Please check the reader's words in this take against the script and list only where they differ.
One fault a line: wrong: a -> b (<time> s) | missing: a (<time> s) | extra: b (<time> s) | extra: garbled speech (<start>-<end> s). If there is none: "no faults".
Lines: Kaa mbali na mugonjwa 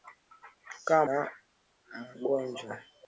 missing: mbali (1.1 s)